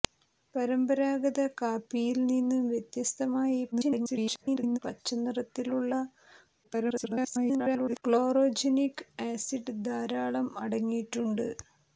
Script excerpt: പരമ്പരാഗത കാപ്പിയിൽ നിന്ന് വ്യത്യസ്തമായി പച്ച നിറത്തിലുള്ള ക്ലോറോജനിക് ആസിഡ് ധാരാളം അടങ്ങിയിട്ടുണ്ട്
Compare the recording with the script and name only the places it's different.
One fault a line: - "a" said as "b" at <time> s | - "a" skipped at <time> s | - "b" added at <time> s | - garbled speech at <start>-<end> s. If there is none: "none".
- garbled speech at 3.7-4.8 s
- garbled speech at 6.6-8.0 s